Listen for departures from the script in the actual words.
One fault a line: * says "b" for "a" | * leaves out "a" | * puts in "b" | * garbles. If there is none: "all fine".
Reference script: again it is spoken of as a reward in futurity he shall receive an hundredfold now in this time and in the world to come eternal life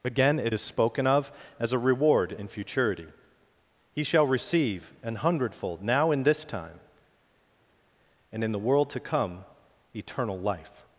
all fine